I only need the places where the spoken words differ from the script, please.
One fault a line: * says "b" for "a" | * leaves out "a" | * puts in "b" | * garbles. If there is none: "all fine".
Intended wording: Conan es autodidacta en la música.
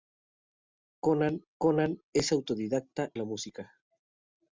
* puts in "conan"
* leaves out "en"